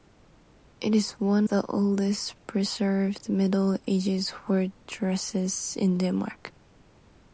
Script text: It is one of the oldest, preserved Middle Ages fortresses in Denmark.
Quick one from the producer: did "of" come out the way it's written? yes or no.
no